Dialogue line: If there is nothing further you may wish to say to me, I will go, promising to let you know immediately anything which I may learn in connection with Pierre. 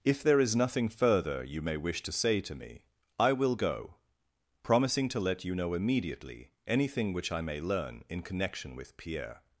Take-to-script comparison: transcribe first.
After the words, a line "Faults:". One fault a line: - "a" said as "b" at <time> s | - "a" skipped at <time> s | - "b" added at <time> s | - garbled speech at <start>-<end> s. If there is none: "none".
If there is nothing further you may wish to say to me, I will go, promising to let you know immediately anything which I may learn in connection with Pierre.
Faults:
none